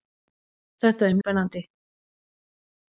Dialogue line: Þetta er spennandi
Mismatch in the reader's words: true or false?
false